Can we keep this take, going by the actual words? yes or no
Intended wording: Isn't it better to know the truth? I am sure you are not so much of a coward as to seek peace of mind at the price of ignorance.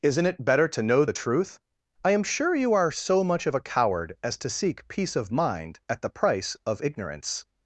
no